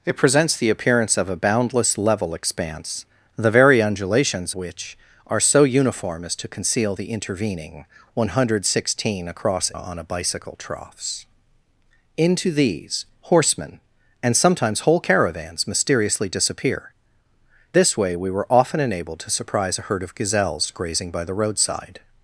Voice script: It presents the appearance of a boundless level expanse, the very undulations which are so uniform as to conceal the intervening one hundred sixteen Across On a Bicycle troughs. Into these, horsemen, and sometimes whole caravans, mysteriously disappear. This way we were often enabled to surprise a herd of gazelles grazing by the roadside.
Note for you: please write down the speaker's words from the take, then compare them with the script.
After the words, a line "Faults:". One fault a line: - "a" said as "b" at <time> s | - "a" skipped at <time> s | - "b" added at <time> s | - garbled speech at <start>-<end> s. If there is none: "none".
It presents the appearance of a boundless level expanse, the very undulations which are so uniform as to conceal the intervening one hundred sixteen Across On a Bicycle troughs. Into these, horsemen, and sometimes whole caravans, mysteriously disappear. This way we were often enabled to surprise a herd of gazelles grazing by the roadside.
Faults:
none